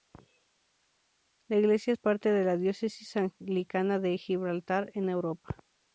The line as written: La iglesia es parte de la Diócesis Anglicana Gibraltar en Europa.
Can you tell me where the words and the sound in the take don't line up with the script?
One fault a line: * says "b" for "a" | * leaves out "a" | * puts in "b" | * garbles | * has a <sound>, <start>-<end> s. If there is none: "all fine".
* puts in "de"